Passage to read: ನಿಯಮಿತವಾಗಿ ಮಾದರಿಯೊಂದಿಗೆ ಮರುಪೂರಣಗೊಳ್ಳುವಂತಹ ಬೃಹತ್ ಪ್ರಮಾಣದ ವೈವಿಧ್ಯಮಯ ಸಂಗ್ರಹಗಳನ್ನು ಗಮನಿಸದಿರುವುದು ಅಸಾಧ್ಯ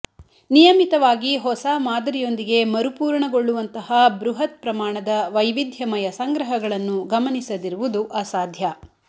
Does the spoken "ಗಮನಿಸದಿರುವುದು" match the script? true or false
true